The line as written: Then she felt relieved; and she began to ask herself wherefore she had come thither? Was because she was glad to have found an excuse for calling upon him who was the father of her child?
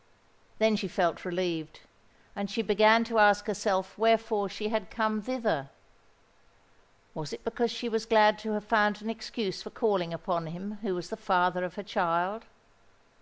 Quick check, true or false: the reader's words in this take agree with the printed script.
false